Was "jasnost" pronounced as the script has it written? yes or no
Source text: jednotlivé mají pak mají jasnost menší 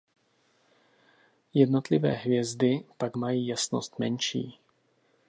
yes